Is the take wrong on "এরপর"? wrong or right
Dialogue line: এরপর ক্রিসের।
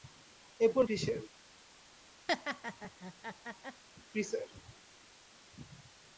right